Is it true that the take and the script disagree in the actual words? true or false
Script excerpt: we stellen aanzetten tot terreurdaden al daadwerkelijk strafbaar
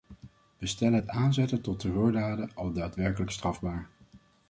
true